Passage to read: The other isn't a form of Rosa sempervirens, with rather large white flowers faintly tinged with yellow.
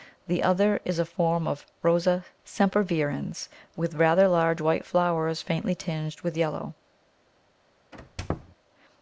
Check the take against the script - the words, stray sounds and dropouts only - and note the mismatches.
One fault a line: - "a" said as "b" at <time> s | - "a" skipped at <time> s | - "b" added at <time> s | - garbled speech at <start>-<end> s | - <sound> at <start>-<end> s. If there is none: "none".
- "isn't" said as "is" at 0.8 s
- squeak at 7.9-8.6 s